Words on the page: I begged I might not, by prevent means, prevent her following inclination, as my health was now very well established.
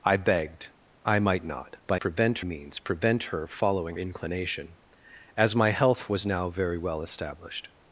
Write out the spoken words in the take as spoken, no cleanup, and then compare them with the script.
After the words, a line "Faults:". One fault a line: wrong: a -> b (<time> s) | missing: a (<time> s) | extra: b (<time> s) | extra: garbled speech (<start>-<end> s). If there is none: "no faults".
I begged I might not, by prevent means, prevent her following inclination, as my health was now very well established.
Faults:
no faults